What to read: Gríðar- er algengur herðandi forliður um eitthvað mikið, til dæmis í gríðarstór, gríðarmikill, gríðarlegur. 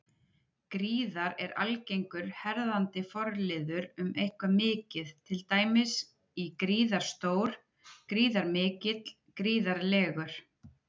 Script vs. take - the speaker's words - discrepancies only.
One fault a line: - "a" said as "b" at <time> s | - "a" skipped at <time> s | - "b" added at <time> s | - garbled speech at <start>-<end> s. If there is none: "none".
none